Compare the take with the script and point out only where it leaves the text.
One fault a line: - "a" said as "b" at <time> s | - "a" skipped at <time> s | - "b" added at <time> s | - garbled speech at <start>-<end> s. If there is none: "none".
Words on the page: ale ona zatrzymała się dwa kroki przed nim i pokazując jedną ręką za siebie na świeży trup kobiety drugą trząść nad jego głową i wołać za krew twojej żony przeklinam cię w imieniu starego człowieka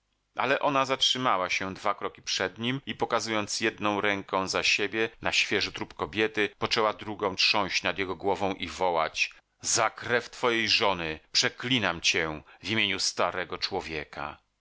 - "poczęła" added at 6.6 s